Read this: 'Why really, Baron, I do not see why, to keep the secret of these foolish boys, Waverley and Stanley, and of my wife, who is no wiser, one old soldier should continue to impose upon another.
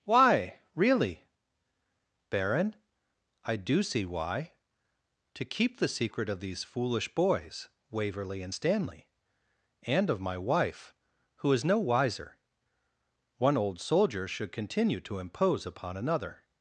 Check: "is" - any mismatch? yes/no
no